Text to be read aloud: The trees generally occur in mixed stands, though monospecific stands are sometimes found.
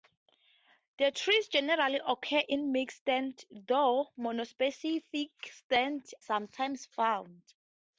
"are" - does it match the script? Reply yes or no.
no